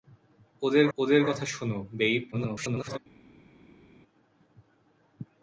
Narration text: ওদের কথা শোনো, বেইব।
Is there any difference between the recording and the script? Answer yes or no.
yes